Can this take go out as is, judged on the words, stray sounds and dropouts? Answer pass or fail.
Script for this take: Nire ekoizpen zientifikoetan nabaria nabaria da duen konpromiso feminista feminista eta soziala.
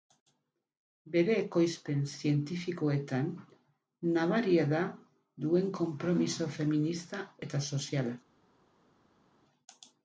fail